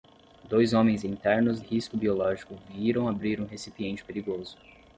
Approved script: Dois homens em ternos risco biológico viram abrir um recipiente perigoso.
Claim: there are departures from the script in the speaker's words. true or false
false